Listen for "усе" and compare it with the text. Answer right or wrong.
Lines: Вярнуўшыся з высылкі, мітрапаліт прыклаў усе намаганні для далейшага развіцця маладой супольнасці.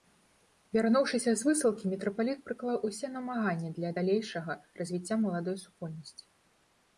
right